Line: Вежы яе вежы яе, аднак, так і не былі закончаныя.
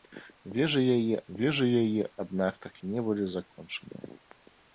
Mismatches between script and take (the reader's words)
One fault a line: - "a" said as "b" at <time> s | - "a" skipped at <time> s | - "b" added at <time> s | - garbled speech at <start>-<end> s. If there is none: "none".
none